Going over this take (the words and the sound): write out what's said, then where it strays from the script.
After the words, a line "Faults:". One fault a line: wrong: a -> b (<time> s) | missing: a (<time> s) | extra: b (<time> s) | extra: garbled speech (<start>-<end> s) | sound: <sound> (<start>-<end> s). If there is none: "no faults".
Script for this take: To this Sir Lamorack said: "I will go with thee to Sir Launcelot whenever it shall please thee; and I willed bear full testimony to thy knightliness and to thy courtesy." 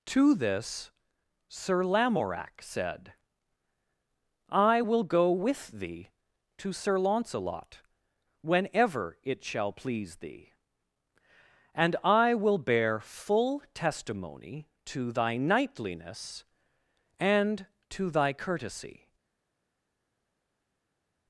To this Sir Lamorack said: "I will go with thee to Sir Launcelot whenever it shall please thee; and I will bear full testimony to thy knightliness and to thy courtesy."
Faults:
wrong: willed -> will (12.3 s)